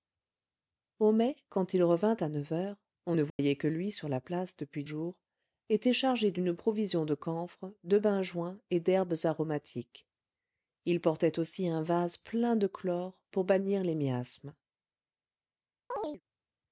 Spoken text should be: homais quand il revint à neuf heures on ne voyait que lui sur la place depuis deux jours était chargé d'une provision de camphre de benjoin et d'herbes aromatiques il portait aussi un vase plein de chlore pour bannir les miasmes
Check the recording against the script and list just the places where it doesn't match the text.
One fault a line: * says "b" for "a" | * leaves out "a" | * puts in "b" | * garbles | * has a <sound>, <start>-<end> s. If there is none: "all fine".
* has a dropout, 3.3-3.4 s
* leaves out "deux"
* has a chirp, 15.9-16.2 s